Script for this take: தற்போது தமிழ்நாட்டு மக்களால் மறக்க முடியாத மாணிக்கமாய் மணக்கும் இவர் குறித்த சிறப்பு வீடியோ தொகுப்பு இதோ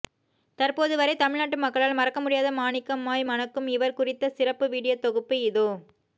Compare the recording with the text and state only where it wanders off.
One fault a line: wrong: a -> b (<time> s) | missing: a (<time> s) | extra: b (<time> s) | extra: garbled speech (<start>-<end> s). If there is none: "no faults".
extra: வரை (1.0 s)